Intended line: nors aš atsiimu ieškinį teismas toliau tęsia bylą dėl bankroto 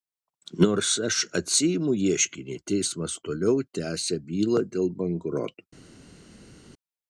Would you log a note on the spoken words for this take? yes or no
no